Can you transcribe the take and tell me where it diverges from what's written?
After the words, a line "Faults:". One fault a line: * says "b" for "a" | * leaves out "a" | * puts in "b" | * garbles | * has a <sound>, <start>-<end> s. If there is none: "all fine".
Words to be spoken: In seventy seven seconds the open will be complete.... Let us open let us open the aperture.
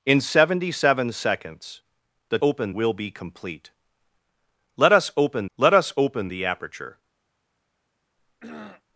In seventy seven seconds the open will be complete.... Let us open let us open the aperture.
Faults:
* has a throat clearing, 8.2-8.8 s